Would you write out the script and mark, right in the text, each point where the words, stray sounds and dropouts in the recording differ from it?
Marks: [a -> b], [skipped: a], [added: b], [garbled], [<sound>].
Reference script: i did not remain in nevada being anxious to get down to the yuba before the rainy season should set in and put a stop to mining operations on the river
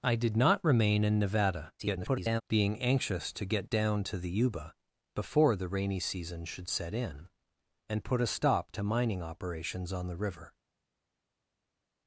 i did not remain in nevada [garbled] being anxious to get down to the yuba before the rainy season should set in and put a stop to mining operations on the river